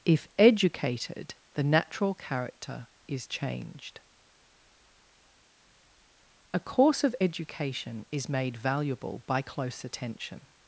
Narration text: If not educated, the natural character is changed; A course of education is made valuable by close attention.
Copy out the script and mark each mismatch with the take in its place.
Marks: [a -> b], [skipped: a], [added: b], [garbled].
If [skipped: not] educated, the natural character is changed; A course of education is made valuable by close attention.